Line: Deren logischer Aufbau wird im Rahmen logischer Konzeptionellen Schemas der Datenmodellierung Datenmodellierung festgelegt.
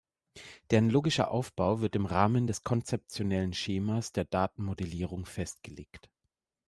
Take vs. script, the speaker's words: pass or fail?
fail